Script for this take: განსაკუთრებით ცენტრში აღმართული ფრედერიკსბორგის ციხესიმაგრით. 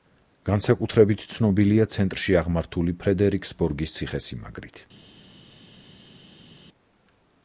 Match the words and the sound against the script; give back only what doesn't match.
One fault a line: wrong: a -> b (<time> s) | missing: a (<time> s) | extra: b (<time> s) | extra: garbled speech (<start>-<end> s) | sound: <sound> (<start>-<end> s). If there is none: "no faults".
extra: ცნობილია (1.3 s)